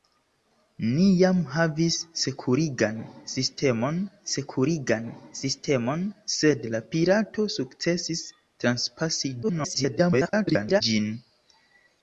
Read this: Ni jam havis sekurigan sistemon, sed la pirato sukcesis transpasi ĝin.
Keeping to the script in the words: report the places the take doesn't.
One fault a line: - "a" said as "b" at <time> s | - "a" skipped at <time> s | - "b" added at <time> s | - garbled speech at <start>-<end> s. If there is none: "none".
- "sekurigan sistemon" added at 4.3 s
- garbled speech at 9.4-10.8 s